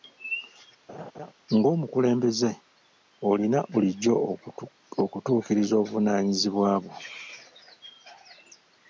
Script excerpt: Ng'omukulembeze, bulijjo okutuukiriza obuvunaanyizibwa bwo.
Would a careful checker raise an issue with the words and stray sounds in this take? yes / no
yes